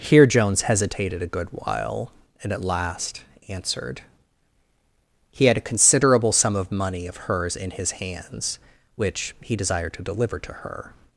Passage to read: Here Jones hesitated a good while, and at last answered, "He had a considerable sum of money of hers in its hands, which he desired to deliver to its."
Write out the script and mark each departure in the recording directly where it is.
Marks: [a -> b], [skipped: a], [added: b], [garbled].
Here Jones hesitated a good while, and at last answered, "He had a considerable sum of money of hers in [its -> his] hands, which he desired to deliver to [its." -> her]